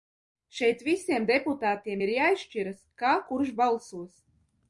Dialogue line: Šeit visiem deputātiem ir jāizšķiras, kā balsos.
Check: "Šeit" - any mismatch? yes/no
no